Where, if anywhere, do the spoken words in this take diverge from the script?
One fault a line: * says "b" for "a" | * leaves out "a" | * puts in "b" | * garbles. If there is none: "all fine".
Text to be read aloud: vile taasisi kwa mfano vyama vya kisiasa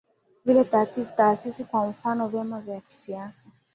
all fine